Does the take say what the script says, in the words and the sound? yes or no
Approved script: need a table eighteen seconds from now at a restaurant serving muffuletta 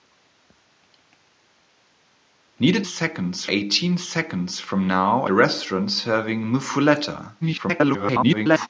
no